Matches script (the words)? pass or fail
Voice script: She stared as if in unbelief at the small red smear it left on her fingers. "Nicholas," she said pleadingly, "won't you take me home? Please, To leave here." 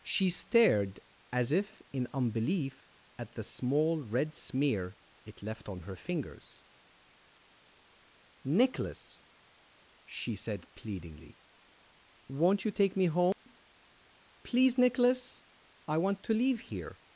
fail